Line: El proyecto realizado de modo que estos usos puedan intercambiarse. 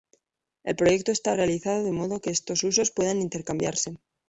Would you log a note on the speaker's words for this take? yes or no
yes